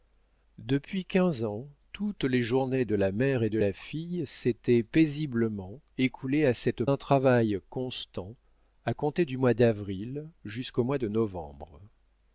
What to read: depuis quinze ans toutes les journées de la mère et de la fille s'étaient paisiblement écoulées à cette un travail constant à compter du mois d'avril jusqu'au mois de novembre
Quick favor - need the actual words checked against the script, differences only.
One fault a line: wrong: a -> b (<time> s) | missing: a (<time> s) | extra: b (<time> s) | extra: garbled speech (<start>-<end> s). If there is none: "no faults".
no faults